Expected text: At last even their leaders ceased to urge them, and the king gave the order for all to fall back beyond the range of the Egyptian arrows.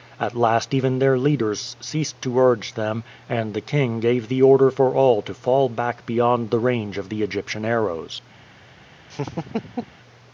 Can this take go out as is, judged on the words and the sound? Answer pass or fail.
fail